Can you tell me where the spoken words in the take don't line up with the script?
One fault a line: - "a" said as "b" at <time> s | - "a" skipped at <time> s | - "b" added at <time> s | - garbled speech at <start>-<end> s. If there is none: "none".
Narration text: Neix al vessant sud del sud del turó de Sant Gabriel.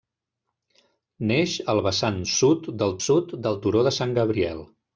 none